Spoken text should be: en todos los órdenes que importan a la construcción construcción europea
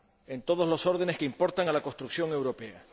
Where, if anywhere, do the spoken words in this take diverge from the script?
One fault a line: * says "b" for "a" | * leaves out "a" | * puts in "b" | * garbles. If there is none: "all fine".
* leaves out "construcción"